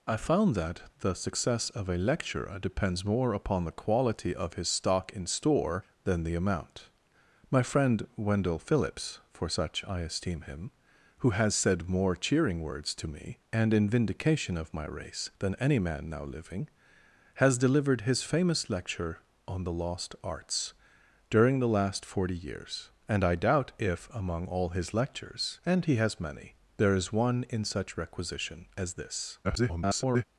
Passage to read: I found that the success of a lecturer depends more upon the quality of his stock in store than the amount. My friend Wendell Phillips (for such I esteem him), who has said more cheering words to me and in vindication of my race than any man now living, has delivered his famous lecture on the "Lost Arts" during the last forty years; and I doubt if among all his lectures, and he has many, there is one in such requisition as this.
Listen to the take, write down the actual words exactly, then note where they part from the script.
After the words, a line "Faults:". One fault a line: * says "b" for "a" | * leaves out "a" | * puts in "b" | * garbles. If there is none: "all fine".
I found that the success of a lecturer depends more upon the quality of his stock in store than the amount. My friend Wendell Phillips (for such I esteem him), who has said more cheering words to me and in vindication of my race than any man now living, has delivered his famous lecture on the "Lost Arts" during the last forty years; and I doubt if among all his lectures, and he has many, there is one in such requisition as this. [garbled]
Faults:
* garbles